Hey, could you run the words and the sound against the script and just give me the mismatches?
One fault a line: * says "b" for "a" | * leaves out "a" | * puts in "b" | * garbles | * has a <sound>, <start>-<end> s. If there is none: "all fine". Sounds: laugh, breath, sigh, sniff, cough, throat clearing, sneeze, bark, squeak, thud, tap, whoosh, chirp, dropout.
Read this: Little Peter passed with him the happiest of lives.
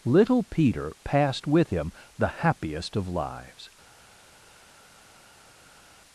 all fine